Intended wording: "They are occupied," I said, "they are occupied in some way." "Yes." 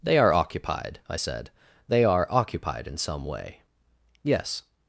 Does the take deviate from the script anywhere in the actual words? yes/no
no